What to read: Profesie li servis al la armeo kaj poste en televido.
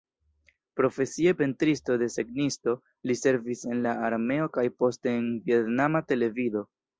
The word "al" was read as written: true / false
false